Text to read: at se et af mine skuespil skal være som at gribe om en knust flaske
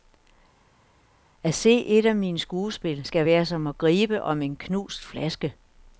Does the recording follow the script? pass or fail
pass